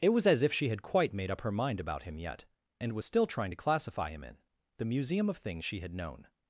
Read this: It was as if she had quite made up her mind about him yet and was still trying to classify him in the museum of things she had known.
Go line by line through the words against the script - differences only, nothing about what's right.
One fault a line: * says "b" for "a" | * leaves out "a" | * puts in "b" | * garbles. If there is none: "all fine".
all fine